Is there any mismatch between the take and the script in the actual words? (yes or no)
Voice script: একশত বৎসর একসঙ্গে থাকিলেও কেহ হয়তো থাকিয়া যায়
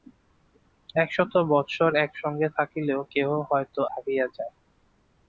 no